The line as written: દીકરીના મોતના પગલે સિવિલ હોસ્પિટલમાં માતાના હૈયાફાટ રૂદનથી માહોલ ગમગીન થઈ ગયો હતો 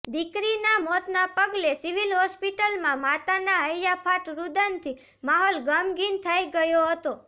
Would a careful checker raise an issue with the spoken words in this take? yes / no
no